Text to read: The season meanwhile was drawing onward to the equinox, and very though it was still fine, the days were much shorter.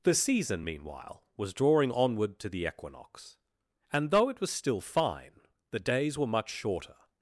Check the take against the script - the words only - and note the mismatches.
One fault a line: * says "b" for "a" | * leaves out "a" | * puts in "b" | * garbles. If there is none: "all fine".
* leaves out "very"